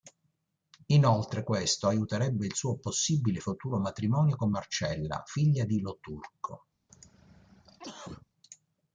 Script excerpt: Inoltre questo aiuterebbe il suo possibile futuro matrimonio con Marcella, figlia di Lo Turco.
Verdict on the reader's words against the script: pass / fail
pass